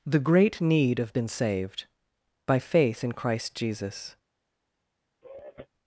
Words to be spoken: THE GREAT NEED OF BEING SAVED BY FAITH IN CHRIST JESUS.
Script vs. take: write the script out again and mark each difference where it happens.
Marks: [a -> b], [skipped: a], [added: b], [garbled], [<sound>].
THE GREAT NEED OF [BEING -> Been] SAVED BY FAITH IN CHRIST JESUS. [sigh]